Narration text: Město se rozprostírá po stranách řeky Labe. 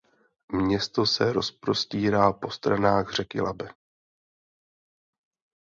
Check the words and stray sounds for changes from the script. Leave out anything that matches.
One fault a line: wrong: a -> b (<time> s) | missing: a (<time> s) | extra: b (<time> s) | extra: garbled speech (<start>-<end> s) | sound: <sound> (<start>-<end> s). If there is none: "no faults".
no faults